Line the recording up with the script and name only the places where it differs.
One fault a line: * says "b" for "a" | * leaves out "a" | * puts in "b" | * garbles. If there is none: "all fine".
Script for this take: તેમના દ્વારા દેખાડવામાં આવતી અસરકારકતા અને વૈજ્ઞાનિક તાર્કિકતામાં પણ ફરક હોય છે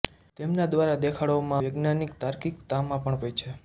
* leaves out "આવતી અસરકારકતા અને"
* leaves out "ફરક"